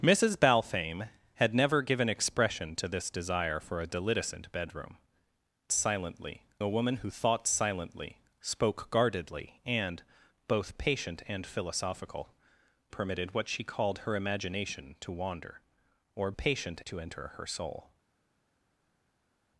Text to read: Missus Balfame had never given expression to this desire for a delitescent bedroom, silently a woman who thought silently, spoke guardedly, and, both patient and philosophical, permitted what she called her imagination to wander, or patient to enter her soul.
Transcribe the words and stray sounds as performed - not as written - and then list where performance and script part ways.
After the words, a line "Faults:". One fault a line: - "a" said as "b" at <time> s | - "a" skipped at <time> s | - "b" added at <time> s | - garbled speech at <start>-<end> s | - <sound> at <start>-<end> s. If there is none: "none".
Missus Balfame had never given expression to this desire for a delitescent bedroom, silently a woman who thought silently, spoke guardedly, and, both patient and philosophical, permitted what she called her imagination to wander, or patient to enter her soul.
Faults:
none